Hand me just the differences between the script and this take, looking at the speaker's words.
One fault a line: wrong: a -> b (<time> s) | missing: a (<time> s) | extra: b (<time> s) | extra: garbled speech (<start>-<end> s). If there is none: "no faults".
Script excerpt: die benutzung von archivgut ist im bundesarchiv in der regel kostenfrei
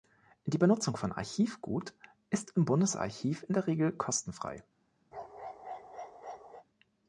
no faults